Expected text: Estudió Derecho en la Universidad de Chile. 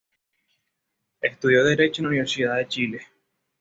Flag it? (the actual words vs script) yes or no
no